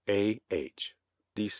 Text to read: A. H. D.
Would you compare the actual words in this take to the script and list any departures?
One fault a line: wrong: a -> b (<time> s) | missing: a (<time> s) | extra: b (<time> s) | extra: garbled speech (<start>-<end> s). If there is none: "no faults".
no faults